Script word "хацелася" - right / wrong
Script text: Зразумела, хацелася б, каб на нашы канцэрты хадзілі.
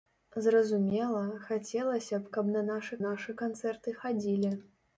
right